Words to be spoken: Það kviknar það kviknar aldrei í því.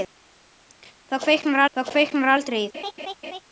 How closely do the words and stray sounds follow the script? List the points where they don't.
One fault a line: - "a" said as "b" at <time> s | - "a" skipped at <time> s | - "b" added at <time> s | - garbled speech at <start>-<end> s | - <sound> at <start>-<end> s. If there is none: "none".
- laugh at 2.7-3.4 s